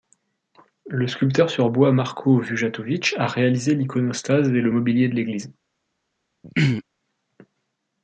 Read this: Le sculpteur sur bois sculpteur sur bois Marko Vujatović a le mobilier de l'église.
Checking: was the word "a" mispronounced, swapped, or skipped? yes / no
yes